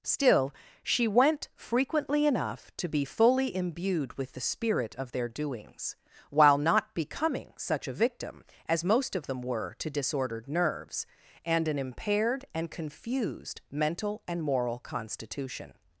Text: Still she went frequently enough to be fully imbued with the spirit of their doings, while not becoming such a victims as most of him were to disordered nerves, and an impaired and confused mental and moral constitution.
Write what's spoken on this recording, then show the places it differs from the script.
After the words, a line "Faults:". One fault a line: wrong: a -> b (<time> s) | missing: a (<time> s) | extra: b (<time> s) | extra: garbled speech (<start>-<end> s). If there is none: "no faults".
Still she went frequently enough to be fully imbued with the spirit of their doings, while not becoming such a victim as most of them were to disordered nerves, and an impaired and confused mental and moral constitution.
Faults:
wrong: victims -> victim (7.9 s)
wrong: him -> them (9.3 s)